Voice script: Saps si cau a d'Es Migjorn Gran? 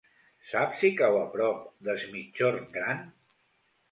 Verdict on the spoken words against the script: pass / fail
fail